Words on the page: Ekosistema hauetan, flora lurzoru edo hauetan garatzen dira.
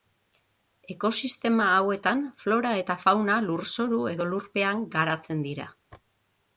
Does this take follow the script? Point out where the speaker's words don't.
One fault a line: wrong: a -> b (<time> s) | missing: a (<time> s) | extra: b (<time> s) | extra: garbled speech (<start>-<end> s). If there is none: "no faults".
extra: eta fauna (2.8 s)
wrong: hauetan -> lurpean (4.3 s)